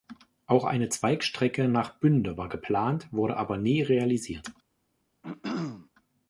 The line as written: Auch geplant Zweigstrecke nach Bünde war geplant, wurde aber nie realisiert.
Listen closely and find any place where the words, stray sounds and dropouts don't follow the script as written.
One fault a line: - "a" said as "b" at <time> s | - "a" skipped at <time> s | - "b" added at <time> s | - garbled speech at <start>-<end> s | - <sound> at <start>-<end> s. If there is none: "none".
- "geplant" said as "eine" at 0.7 s
- throat clearing at 5.2-5.9 s